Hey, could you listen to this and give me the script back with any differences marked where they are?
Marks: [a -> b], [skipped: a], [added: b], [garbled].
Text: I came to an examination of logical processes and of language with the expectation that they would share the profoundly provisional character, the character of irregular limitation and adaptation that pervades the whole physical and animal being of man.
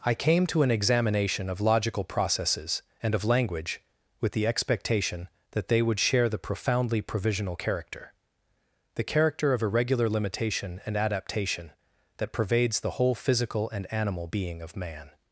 I came to an examination of logical processes and of language with the expectation that they would share the profoundly provisional character, the character of irregular limitation and adaptation that pervades the whole physical and animal being of man.